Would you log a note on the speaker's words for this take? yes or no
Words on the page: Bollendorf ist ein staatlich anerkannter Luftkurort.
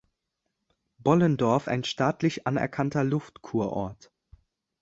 yes